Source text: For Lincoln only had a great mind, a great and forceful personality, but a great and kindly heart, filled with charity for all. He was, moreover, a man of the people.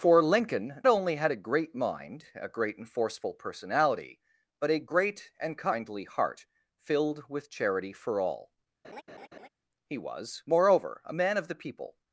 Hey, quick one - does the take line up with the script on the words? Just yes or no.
yes